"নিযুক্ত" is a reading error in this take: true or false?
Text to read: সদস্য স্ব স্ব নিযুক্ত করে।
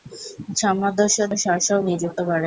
false